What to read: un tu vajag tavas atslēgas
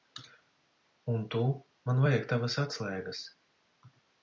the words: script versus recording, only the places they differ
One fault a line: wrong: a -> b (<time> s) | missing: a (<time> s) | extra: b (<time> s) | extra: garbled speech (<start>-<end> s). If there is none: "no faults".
extra: man (1.9 s)